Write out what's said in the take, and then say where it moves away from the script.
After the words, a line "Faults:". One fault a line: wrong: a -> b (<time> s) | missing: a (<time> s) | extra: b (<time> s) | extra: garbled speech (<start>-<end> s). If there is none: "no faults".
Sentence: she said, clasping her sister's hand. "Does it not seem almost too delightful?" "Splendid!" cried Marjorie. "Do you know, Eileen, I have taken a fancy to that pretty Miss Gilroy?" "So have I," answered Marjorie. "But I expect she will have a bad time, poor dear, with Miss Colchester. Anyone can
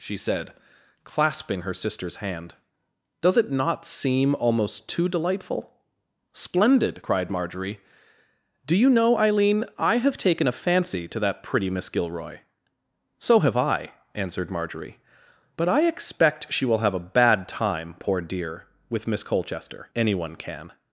she said, clasping her sister's hand. "Does it not seem almost too delightful?" "Splendid!" cried Marjorie. "Do you know, Eileen, I have taken a fancy to that pretty Miss Gilroy?" "So have I," answered Marjorie. "But I expect she will have a bad time, poor dear, with Miss Colchester. Anyone can
Faults:
no faults